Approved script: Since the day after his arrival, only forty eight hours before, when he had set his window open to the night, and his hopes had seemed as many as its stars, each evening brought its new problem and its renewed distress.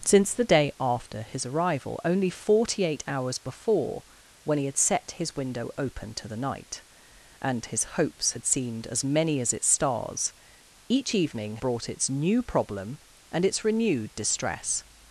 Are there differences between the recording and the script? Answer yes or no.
no